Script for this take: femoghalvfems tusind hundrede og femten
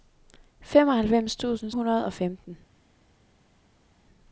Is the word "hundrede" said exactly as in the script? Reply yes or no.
yes